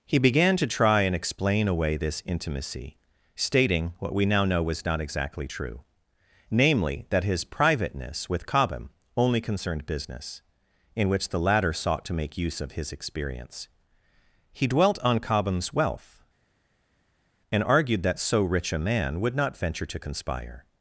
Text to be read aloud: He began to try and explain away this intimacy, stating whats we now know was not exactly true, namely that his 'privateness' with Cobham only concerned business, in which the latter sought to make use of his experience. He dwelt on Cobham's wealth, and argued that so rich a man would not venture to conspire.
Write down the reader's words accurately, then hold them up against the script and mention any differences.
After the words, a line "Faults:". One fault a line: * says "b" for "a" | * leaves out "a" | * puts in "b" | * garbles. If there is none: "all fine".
He began to try and explain away this intimacy, stating what we now know was not exactly true, namely that his 'privateness' with Cobham only concerned business, in which the latter sought to make use of his experience. He dwelt on Cobham's wealth, and argued that so rich a man would not venture to conspire.
Faults:
* says "what" for "whats"